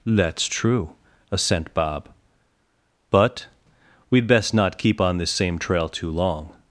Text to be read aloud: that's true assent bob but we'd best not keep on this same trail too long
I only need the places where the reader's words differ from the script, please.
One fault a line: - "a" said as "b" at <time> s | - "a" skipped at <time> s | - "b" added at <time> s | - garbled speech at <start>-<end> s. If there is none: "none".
none